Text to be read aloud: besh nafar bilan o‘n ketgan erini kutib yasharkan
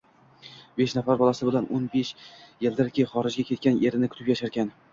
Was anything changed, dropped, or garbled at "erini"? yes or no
no